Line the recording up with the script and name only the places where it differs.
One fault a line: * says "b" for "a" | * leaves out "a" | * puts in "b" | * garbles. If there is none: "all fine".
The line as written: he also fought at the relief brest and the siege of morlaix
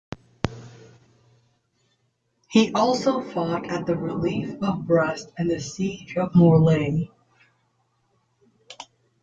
* puts in "of"